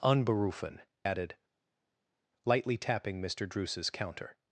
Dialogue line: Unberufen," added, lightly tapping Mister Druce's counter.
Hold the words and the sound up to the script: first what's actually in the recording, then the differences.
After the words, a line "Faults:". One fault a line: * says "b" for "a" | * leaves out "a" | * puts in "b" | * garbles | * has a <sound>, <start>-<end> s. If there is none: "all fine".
Unberufen," added, lightly tapping Mister Druce's counter.
Faults:
all fine